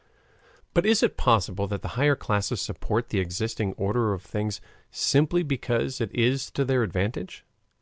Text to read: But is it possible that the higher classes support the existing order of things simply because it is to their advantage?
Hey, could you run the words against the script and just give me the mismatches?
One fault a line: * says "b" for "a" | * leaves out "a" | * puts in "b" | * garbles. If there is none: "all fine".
all fine